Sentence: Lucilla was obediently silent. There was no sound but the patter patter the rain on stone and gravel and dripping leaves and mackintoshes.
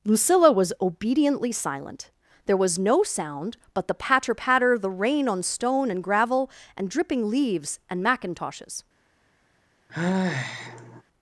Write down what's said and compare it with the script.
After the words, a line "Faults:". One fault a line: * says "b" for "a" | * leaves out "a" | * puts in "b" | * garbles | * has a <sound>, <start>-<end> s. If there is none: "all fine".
Lucilla was obediently silent. There was no sound but the patter patter the rain on stone and gravel and dripping leaves and mackintoshes.
Faults:
* has a sigh, 9.9-11.0 s